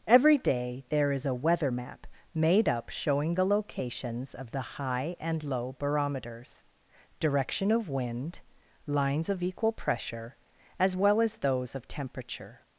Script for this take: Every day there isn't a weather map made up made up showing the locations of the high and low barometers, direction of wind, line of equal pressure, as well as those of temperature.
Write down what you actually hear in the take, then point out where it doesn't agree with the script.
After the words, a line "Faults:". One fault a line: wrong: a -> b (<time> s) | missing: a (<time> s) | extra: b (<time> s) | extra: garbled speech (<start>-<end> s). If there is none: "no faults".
Every day there is a weather map made up showing the locations of the high and low barometers, direction of wind, lines of equal pressure, as well as those of temperature.
Faults:
wrong: isn't -> is (1.1 s)
missing: made up (2.9 s)
wrong: line -> lines (8.9 s)